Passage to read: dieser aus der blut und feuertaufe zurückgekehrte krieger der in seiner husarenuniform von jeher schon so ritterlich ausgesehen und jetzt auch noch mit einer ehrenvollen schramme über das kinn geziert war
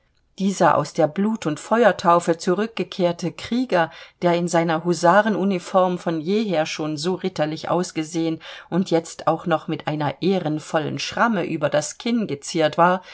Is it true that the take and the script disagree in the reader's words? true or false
false